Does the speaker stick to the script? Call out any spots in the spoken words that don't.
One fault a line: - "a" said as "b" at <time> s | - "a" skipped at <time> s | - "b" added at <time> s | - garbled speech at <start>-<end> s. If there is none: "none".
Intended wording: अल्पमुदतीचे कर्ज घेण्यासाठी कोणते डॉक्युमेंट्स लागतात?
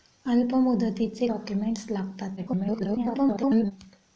- "कर्ज घेण्यासाठी कोणते" skipped at 1.3 s
- garbled speech at 2.4-3.7 s